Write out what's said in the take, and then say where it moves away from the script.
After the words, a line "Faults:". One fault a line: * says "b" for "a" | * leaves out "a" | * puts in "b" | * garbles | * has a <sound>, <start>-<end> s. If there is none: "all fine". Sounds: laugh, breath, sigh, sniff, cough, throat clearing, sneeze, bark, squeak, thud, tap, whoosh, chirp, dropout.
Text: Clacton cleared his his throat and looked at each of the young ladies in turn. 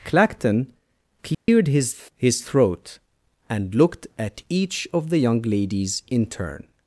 Clacton cleared his his throat and looked at each of the young ladies in turn.
Faults:
* has a dropout, 1.3-1.5 s